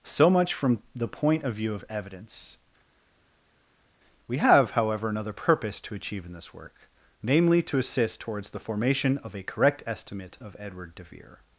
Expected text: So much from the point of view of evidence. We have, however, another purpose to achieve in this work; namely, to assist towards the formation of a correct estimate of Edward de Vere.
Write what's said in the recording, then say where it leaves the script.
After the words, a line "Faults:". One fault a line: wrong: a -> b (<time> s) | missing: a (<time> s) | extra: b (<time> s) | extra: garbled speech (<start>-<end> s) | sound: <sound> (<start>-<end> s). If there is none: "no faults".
So much from the point of view of evidence. We have, however, another purpose to achieve in this work; namely, to assist towards the formation of a correct estimate of Edward de Vere.
Faults:
no faults